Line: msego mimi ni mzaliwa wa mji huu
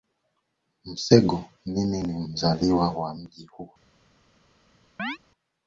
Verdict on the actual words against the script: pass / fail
pass